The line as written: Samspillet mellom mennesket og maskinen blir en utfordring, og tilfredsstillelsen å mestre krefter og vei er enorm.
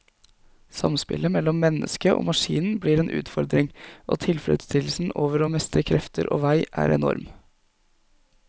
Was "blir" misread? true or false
false